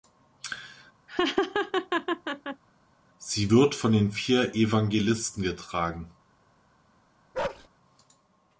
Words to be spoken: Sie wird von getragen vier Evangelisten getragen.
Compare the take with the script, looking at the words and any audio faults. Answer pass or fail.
fail